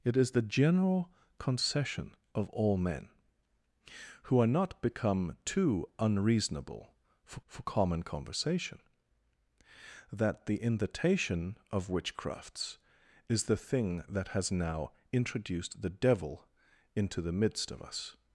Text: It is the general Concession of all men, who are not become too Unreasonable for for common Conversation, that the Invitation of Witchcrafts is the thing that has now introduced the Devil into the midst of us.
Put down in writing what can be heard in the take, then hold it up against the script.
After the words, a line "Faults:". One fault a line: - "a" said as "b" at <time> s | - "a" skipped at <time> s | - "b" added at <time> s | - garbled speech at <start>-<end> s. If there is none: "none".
It is the general Concession of all men, who are not become too Unreasonable for for common Conversation, that the Invitation of Witchcrafts is the thing that has now introduced the Devil into the midst of us.
Faults:
none